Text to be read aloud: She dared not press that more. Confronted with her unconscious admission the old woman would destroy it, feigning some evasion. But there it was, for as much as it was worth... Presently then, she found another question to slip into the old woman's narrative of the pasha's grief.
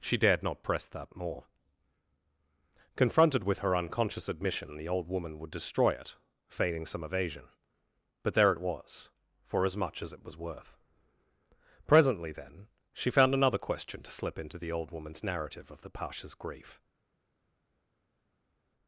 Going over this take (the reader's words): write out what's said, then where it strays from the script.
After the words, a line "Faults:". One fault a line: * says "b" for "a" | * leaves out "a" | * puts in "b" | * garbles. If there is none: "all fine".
She dared not press that more. Confronted with her unconscious admission the old woman would destroy it, feigning some evasion. But there it was, for as much as it was worth... Presently then, she found another question to slip into the old woman's narrative of the pasha's grief.
Faults:
all fine